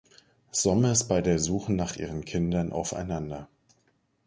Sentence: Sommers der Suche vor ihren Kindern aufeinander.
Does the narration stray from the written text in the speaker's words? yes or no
yes